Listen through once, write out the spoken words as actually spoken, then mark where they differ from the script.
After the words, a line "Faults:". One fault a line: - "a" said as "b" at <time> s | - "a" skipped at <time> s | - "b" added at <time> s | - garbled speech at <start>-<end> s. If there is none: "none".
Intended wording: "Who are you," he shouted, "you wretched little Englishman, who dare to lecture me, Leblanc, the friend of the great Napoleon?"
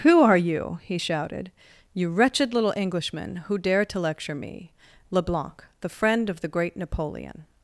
"Who are you," he shouted, "you wretched little Englishman, who dare to lecture me, Leblanc, the friend of the great Napoleon?"
Faults:
none